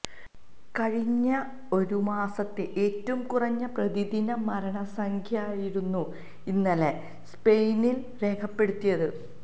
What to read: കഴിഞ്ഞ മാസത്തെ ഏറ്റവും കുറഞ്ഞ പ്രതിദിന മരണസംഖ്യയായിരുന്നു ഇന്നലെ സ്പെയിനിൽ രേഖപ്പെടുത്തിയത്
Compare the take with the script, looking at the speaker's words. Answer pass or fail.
fail